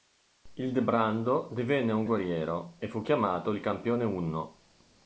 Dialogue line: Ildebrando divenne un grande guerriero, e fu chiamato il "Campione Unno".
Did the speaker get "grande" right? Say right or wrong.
wrong